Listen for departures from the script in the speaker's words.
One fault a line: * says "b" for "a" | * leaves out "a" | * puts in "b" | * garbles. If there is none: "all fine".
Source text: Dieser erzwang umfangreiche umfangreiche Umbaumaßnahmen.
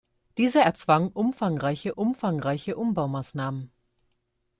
all fine